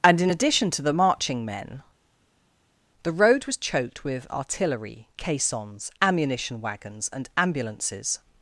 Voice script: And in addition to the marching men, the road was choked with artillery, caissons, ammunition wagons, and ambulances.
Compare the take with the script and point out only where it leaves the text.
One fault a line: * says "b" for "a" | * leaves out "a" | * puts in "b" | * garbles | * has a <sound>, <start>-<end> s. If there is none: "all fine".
all fine